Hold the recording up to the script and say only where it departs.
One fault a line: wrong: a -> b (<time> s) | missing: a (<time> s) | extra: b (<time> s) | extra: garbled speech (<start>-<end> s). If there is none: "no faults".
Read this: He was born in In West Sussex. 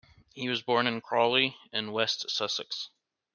extra: Crawley (1.0 s)